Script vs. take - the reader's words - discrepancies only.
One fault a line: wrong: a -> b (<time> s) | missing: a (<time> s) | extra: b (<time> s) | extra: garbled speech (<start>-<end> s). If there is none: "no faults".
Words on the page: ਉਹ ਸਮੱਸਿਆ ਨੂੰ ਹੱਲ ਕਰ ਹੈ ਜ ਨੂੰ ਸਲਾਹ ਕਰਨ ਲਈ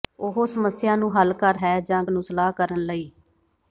no faults